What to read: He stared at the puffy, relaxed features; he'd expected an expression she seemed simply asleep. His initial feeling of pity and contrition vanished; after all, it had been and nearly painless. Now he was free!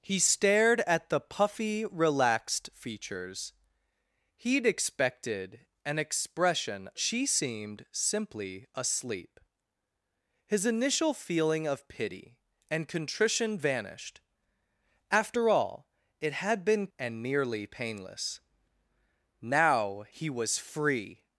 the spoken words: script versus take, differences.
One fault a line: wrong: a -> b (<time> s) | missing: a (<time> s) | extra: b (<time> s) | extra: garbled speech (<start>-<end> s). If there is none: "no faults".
no faults